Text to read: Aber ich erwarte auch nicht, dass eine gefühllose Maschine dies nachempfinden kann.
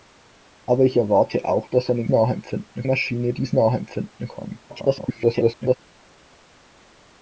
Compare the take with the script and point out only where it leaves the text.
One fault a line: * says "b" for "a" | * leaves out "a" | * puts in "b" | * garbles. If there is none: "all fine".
* leaves out "nicht"
* says "nachempfinden" for "gefühllose"
* garbles